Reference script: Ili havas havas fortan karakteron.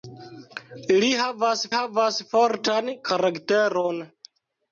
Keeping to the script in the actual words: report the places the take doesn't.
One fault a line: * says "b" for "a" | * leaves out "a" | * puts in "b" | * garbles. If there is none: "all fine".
all fine